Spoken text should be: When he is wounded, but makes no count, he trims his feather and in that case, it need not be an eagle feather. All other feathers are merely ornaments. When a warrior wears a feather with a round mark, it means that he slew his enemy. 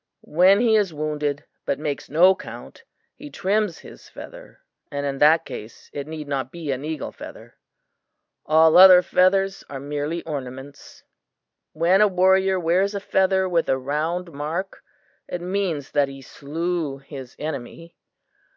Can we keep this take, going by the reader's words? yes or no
yes